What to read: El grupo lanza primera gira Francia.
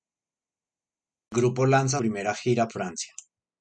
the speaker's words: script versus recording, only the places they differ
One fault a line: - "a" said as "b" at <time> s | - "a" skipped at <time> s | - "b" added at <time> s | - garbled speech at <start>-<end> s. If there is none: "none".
none